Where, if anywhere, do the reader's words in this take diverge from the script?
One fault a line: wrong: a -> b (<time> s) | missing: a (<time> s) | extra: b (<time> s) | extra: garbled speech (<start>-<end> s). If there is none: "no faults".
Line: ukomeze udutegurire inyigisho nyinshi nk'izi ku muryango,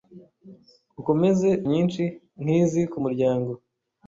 missing: udutegurire inyigisho (1.5 s)